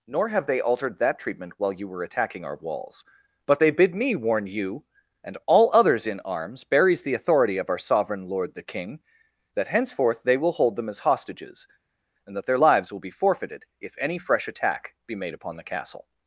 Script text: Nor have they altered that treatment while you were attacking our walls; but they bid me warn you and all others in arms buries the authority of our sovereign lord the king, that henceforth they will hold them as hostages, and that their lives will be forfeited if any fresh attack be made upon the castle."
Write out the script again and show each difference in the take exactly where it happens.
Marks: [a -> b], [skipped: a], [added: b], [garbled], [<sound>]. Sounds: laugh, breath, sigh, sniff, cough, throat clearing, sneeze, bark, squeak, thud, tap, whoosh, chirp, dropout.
Nor have they altered that treatment while you were attacking our walls; but they bid me warn you and all others in arms buries the authority of our sovereign lord the king, that henceforth they will hold them as hostages, and that their lives will be forfeited if any fresh attack be made upon the castle."